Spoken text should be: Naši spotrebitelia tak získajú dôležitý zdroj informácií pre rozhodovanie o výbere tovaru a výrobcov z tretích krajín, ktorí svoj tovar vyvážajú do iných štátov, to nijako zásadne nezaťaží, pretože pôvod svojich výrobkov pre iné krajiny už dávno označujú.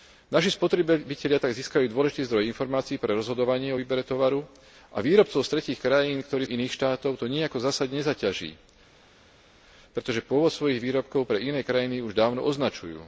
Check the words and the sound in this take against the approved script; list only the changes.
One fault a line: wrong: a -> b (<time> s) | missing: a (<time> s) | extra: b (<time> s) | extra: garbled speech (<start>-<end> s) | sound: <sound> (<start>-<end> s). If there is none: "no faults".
missing: svoj tovar vyvážajú (6.5 s)